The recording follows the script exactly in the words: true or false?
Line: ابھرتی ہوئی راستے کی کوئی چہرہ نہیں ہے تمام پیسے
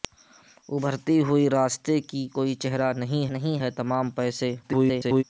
false